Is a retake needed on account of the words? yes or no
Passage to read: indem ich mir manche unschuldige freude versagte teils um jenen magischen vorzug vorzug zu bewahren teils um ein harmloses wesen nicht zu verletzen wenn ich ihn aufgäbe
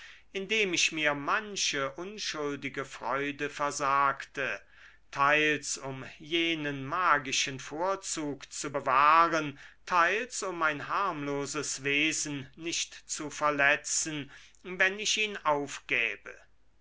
yes